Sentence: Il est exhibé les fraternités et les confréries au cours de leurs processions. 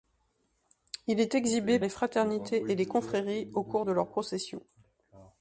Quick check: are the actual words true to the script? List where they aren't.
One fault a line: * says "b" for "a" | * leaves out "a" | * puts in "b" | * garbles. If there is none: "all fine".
all fine